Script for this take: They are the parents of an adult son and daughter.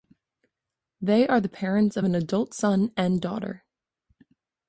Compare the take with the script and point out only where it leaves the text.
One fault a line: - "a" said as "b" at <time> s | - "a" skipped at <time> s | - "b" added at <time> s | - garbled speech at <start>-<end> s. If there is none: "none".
none